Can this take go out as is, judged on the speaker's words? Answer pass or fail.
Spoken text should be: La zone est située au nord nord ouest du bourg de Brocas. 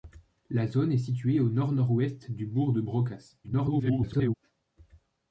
fail